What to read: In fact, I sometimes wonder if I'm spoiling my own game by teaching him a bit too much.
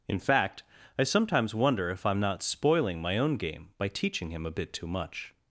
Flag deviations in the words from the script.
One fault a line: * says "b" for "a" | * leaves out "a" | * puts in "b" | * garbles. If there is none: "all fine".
* puts in "not"